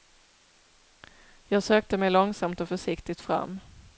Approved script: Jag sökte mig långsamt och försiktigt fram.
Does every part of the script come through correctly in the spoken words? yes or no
yes